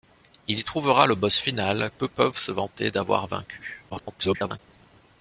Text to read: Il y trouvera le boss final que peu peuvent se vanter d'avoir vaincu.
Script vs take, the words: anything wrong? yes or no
yes